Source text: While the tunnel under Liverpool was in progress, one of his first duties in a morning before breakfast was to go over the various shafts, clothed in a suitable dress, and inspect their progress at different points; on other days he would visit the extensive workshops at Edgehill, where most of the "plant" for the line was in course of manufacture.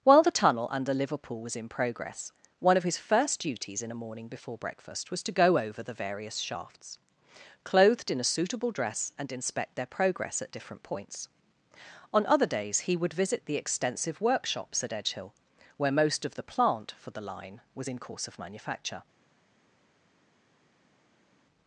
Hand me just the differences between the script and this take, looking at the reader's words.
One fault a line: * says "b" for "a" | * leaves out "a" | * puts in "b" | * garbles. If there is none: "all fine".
all fine